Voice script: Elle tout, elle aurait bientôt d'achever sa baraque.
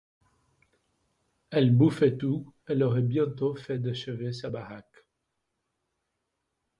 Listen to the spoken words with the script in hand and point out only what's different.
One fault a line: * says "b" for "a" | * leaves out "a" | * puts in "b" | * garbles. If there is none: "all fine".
* puts in "bouffait"
* puts in "fait"